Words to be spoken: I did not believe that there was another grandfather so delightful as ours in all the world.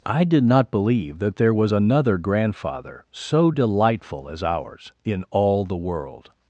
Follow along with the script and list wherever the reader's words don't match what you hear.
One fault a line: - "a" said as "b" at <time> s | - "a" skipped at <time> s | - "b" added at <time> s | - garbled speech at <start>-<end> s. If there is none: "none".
none